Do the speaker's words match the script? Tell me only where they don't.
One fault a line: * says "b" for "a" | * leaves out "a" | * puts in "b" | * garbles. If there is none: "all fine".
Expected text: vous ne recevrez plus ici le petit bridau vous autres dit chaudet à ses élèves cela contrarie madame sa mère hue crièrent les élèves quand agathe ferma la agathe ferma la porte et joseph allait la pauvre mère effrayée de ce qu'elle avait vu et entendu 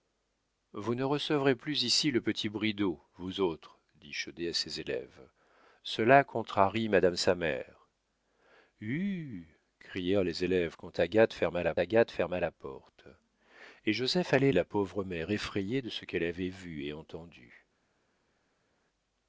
all fine